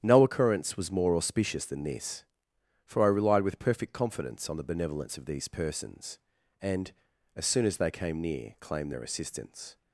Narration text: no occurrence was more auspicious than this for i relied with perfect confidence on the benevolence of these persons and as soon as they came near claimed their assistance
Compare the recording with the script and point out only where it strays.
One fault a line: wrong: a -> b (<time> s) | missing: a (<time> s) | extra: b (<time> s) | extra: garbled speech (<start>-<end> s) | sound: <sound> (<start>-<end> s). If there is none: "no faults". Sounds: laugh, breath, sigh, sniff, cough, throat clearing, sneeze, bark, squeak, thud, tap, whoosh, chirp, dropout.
no faults